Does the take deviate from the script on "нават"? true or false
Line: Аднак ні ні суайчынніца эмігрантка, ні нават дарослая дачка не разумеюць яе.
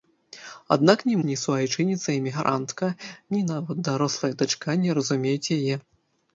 false